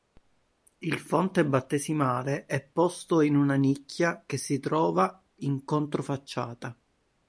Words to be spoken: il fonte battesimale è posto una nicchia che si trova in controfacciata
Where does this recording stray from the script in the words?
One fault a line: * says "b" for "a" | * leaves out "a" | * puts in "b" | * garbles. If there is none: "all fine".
* puts in "in"